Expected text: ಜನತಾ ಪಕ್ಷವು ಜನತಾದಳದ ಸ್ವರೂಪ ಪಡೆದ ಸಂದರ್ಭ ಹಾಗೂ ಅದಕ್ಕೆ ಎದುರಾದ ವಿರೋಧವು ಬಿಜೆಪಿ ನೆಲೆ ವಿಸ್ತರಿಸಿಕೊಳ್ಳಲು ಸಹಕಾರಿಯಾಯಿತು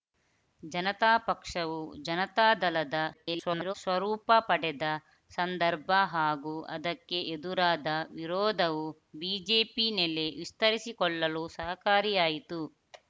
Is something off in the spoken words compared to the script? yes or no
yes